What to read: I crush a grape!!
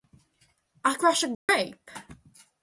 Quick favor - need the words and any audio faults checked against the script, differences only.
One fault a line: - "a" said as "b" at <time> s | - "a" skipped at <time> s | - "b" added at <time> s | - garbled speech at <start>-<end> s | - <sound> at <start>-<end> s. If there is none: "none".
- dropout at 1.3-1.5 s